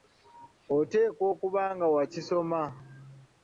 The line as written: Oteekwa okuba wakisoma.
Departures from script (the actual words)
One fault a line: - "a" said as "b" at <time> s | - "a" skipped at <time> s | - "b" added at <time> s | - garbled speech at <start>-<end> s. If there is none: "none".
- "nga" added at 1.7 s